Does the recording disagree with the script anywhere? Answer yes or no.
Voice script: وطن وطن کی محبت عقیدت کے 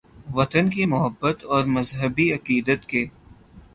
yes